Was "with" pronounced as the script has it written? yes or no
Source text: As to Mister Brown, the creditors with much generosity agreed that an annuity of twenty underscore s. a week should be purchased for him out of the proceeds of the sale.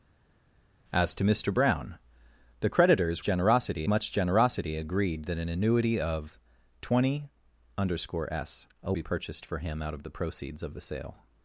no